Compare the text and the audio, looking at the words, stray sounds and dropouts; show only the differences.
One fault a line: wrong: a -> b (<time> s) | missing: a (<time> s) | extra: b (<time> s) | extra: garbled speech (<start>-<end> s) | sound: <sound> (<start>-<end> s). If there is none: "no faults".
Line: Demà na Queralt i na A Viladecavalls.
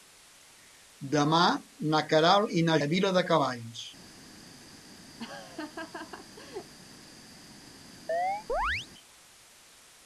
sound: laugh (5.2-6.7 s)
sound: chirp (8.1-8.9 s)